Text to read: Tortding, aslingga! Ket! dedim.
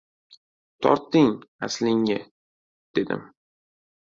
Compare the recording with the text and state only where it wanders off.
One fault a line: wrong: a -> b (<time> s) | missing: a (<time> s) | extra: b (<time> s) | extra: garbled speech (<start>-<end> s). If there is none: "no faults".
missing: Ket (2.2 s)